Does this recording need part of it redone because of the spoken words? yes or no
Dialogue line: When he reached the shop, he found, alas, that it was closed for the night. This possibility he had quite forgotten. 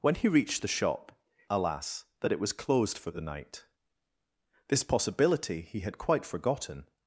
yes